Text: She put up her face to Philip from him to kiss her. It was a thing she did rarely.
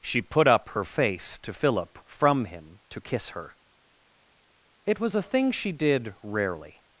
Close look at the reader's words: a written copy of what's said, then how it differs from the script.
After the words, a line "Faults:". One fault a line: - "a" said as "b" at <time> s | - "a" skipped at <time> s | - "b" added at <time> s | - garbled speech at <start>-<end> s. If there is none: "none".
She put up her face to Philip from him to kiss her. It was a thing she did rarely.
Faults:
none